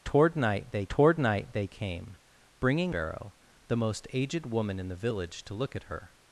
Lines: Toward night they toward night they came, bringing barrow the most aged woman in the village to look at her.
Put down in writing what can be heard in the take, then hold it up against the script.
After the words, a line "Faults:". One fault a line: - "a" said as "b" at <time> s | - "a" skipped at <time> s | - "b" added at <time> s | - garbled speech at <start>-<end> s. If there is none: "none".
Toward night they toward night they came, bringing barrow the most aged woman in the village to look at her.
Faults:
none